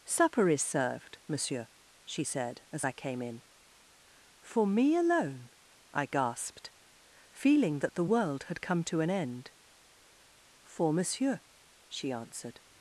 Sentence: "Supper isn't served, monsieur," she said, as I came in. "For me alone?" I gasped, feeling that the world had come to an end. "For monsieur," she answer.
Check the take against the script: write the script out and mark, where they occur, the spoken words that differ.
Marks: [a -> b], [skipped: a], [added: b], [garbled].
"Supper [isn't -> is] served, monsieur," she said, as I came in. "For me alone?" I gasped, feeling that the world had come to an end. "For monsieur," she [answer. -> answered]